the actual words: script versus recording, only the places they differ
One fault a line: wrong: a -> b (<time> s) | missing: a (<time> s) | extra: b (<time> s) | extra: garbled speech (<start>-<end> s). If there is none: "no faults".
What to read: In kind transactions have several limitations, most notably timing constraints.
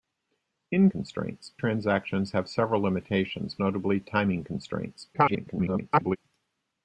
wrong: kind -> constraints (0.9 s)
missing: most (3.6 s)
extra: garbled speech (5.1-6.2 s)